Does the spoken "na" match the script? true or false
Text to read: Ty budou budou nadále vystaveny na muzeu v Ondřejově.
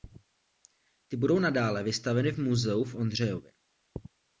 false